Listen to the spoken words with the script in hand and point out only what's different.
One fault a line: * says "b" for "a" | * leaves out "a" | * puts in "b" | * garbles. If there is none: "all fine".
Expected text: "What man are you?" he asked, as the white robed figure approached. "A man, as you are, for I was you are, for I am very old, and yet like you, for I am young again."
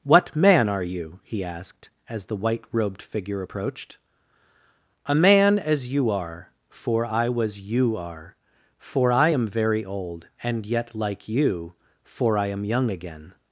all fine